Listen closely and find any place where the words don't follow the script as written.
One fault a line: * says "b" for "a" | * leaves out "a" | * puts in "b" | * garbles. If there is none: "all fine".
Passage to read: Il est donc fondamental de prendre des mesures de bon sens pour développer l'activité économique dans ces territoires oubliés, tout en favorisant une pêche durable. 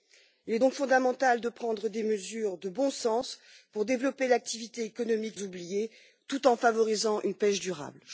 * leaves out "dans ces territoires"